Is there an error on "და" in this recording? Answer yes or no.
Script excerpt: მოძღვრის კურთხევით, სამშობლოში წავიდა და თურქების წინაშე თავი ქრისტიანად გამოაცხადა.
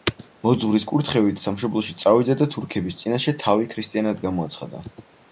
no